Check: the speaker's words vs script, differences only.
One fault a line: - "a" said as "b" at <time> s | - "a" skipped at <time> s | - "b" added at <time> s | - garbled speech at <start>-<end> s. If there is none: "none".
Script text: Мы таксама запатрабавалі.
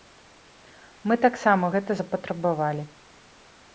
- "гэта" added at 1.7 s